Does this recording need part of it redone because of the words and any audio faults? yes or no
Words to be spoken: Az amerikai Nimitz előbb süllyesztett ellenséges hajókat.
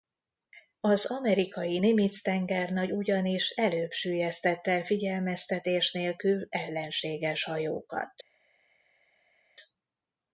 yes